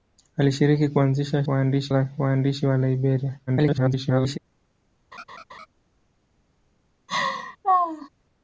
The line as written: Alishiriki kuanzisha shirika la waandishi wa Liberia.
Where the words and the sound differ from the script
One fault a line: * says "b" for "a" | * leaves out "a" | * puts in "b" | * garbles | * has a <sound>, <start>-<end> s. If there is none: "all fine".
* says "waandishi" for "shirika"
* garbles
* has a laugh, 5.1-5.7 s
* has a laugh, 7.1-8.1 s